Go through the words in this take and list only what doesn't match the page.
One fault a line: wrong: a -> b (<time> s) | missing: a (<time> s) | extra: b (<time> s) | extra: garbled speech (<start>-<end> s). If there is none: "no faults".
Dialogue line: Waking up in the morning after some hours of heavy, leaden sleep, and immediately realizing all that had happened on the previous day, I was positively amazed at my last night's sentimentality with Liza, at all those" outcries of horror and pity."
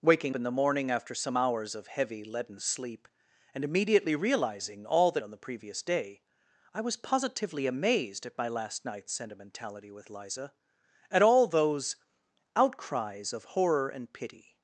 missing: up (0.3 s)
missing: had happened (5.2 s)